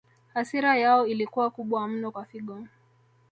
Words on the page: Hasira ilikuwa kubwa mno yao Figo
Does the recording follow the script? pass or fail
fail